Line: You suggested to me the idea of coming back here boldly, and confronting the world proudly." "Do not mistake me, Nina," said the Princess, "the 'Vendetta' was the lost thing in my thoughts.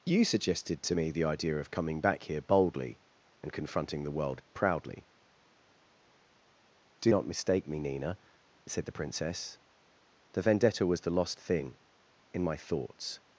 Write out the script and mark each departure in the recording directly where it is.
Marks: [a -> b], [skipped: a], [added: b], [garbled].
You suggested to me the idea of coming back here boldly, and confronting the world proudly." "Do not mistake me, Nina," said the Princess, "the 'Vendetta' was the lost thing in my thoughts.